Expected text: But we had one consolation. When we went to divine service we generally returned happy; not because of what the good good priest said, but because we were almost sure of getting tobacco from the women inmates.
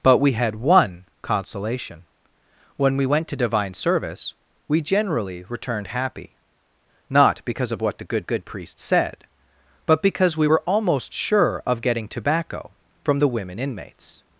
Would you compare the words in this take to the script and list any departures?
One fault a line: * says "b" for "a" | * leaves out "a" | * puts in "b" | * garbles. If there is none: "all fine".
all fine